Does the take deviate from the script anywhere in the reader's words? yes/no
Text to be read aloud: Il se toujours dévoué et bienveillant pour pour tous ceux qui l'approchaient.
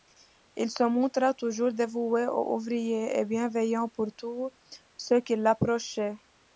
yes